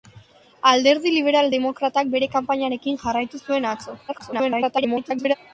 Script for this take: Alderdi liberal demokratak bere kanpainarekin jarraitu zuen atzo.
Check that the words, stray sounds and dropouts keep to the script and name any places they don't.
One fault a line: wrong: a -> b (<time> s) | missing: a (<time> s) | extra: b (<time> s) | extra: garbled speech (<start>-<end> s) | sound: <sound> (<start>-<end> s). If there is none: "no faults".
extra: garbled speech (4.1-5.4 s)